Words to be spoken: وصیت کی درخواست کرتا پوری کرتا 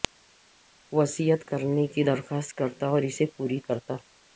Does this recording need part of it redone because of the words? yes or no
yes